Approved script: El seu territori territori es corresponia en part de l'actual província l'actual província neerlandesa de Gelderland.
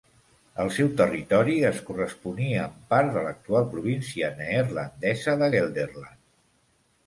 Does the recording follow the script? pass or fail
fail